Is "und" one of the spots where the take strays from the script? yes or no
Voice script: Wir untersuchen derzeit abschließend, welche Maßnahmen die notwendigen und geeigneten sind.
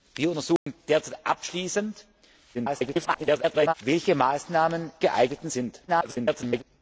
yes